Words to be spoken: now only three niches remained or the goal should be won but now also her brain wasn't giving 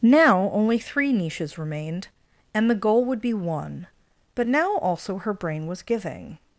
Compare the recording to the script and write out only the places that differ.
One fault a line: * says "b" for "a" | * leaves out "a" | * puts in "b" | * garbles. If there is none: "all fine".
* says "and" for "or"
* says "would" for "should"
* says "was" for "wasn't"